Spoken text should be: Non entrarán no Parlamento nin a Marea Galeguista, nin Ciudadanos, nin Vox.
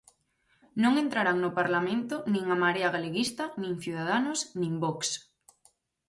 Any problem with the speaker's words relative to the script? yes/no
no